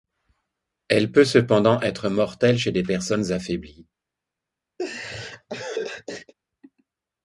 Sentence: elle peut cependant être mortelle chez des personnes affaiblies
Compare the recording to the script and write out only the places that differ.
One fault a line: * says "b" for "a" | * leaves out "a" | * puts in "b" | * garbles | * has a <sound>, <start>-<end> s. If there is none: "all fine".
* has a laugh, 4.8-6.3 s